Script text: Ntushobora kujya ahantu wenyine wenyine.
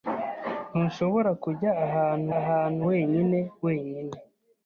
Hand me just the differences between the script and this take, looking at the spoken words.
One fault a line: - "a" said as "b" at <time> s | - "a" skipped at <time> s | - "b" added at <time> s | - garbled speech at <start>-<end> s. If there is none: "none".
- "ahantu" added at 2.4 s